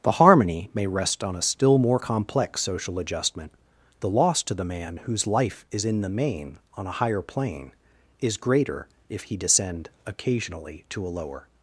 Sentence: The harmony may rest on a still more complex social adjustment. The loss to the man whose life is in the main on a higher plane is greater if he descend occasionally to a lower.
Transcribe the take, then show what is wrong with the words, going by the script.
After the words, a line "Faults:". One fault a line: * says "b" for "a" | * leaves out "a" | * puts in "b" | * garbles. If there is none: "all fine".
The harmony may rest on a still more complex social adjustment. The loss to the man whose life is in the main on a higher plane is greater if he descend occasionally to a lower.
Faults:
all fine